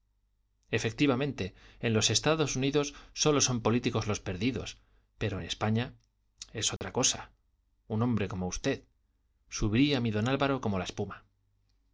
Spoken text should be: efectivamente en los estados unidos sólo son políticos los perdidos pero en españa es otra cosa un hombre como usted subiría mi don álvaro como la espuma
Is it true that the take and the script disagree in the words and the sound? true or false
true